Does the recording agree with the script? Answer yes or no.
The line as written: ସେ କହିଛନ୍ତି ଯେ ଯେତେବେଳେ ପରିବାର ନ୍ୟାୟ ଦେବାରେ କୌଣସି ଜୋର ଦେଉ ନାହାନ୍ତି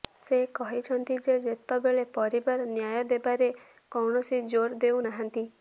yes